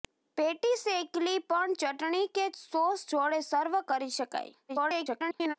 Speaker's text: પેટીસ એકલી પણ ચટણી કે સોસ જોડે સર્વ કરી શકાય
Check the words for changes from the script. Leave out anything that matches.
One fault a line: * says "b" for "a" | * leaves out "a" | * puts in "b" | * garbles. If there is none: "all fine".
* garbles